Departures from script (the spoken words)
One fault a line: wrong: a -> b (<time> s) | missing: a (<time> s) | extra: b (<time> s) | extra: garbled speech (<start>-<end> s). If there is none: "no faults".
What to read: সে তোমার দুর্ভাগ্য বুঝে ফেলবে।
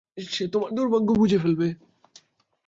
no faults